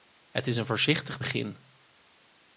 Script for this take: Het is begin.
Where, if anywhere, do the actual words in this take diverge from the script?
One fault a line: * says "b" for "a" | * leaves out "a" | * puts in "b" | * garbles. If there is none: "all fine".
* puts in "een voorzichtig"